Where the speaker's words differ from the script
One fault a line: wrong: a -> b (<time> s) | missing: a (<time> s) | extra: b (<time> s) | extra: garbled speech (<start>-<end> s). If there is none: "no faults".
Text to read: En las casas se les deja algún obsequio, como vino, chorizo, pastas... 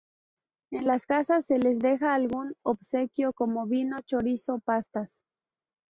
no faults